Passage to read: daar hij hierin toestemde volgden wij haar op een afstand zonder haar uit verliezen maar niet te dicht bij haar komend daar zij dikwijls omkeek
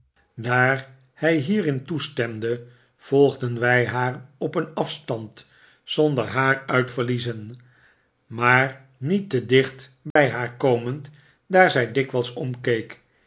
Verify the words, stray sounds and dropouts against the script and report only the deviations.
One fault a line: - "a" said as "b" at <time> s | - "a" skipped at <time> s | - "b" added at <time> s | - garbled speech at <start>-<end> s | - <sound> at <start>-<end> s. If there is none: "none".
- dropout at 10.1-10.2 s